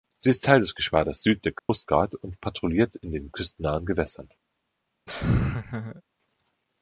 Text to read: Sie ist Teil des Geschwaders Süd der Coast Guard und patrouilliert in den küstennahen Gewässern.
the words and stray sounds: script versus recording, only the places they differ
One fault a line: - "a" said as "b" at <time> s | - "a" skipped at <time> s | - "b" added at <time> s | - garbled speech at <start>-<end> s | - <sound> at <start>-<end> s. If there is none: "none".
- dropout at 1.6-1.7 s
- laugh at 5.1-6.0 s